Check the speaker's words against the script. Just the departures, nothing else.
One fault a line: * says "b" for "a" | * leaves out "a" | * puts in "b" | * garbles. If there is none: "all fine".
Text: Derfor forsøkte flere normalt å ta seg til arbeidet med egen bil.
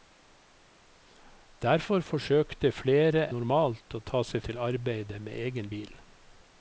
all fine